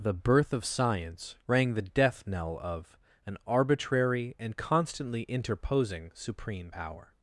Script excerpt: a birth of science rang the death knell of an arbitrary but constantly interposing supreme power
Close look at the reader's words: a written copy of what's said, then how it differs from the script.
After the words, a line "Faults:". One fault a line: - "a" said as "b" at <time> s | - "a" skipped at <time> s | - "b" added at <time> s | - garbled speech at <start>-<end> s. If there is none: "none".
the birth of science rang the death knell of an arbitrary and constantly interposing supreme power
Faults:
- "a" said as "the" at 0.0 s
- "but" said as "and" at 4.4 s